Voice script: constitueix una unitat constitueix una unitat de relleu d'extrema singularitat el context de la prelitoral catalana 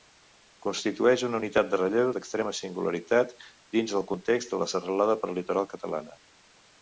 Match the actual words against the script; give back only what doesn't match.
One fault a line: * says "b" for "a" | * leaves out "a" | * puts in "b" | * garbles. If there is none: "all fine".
* leaves out "constitueix una unitat"
* puts in "dins"
* puts in "serralada"